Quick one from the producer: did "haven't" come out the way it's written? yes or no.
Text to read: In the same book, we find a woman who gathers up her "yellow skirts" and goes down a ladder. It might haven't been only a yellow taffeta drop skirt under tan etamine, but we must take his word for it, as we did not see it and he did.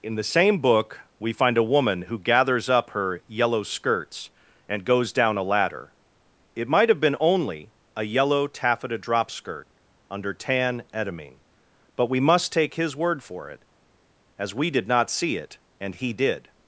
no